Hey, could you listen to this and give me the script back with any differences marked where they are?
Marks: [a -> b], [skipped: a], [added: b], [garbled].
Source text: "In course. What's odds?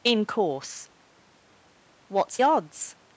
"In course. What's odds?